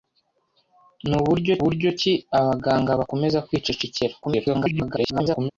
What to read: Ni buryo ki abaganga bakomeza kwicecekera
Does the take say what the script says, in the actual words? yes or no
no